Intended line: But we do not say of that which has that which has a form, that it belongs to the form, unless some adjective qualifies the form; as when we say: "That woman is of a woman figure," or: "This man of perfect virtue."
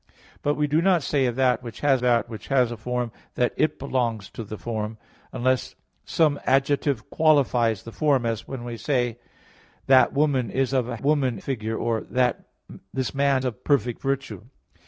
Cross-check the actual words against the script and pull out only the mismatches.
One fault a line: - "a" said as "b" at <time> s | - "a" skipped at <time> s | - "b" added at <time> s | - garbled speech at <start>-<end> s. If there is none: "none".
none